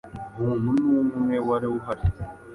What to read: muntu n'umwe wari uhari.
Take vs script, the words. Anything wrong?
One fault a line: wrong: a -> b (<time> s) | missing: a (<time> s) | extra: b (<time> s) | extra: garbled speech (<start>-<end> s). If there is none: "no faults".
no faults